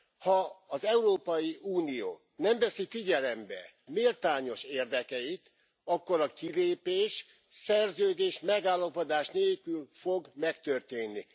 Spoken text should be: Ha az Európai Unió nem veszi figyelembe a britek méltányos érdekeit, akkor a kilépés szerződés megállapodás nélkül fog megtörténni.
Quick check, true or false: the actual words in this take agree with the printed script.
false